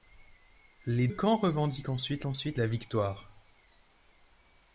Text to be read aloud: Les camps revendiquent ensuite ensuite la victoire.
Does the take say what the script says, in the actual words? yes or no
yes